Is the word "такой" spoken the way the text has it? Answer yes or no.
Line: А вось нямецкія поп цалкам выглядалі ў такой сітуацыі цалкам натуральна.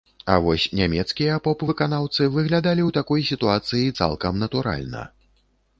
yes